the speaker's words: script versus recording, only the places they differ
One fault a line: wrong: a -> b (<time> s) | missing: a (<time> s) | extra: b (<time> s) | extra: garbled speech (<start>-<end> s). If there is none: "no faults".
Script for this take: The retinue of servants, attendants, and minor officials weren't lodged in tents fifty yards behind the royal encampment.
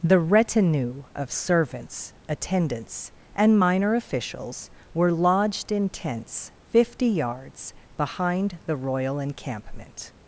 wrong: weren't -> were (4.9 s)